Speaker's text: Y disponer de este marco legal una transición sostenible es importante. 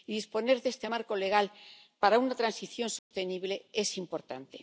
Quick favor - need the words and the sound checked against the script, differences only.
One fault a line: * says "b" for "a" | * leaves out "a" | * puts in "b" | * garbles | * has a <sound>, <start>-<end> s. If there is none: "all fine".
* puts in "para"
* has a dropout, 3.0-3.1 s